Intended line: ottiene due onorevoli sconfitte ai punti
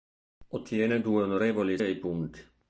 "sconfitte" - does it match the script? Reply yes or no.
no